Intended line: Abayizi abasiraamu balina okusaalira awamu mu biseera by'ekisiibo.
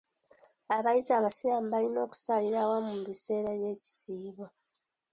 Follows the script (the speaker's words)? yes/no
yes